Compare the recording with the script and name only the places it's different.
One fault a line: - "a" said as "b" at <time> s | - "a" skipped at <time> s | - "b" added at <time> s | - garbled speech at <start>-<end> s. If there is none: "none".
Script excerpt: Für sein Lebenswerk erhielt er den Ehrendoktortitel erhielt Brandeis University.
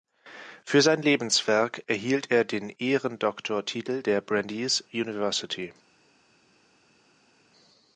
- "erhielt" said as "der" at 4.0 s